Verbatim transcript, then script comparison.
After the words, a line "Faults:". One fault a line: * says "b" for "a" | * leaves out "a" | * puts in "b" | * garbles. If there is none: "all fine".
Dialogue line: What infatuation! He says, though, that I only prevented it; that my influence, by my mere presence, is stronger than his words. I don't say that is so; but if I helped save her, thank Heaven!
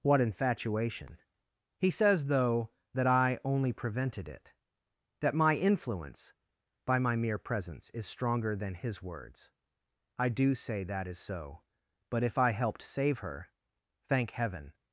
What infatuation! He says, though, that I only prevented it; that my influence, by my mere presence, is stronger than his words. I do say that is so; but if I helped save her, thank Heaven!
Faults:
* says "do" for "don't"